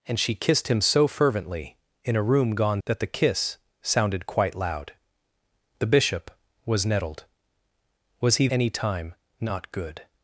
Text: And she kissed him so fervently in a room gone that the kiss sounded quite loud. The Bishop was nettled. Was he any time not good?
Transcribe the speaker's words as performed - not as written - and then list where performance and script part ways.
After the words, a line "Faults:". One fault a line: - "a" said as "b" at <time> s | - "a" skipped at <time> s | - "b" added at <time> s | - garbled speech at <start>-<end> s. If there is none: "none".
And she kissed him so fervently in a room gone that the kiss sounded quite loud. The Bishop was nettled. Was he any time not good?
Faults:
none